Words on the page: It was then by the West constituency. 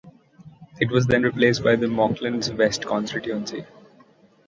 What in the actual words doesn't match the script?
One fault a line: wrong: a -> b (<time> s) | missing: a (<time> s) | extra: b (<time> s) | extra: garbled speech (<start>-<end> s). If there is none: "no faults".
extra: replaced (1.2 s)
extra: Monklands (1.9 s)